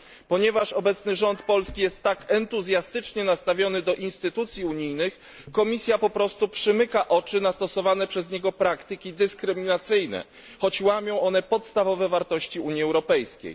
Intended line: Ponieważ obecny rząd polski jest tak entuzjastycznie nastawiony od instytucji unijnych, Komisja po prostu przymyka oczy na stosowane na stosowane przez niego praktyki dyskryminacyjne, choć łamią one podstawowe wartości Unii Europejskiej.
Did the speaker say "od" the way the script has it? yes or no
no